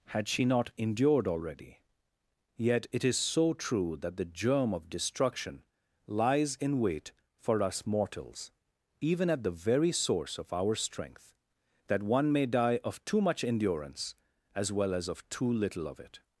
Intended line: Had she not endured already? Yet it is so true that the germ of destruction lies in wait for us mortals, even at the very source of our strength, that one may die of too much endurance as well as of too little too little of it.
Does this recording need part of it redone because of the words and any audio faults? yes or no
yes